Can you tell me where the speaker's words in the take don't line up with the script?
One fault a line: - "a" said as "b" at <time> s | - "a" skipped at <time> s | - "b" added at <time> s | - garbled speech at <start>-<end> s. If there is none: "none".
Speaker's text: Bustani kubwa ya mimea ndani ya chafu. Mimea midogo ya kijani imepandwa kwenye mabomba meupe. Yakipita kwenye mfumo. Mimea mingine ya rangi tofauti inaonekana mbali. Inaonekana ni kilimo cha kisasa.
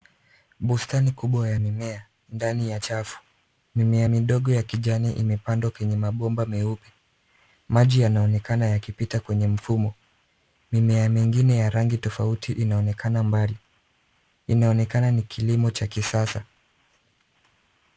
- "Maji yanaonekana" added at 7.7 s